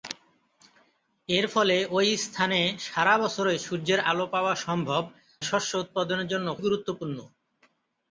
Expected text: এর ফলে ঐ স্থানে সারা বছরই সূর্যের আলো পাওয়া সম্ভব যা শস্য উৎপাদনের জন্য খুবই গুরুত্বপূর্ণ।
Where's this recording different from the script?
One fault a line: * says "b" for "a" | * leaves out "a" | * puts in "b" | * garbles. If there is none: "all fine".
* leaves out "যা"
* leaves out "খুবই"